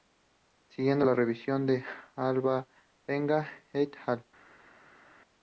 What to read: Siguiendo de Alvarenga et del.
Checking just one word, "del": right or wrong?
wrong